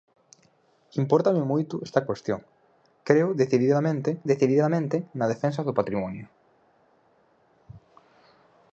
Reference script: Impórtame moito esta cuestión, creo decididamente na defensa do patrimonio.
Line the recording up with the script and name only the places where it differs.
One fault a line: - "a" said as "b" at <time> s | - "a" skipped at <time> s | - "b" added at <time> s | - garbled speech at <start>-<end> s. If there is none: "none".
- "decididamente" added at 4.3 s